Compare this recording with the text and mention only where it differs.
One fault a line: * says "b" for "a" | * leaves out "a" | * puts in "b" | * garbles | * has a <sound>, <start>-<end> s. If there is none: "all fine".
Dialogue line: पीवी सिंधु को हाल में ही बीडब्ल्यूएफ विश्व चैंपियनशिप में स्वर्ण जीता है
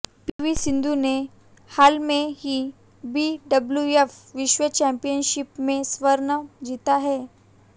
* has a dropout, 0.3-0.4 s
* says "ने" for "को"